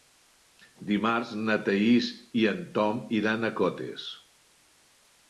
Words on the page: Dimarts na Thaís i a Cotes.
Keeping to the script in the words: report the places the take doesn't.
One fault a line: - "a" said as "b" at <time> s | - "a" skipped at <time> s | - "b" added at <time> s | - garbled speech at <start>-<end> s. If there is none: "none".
- "en Tom iran" added at 2.5 s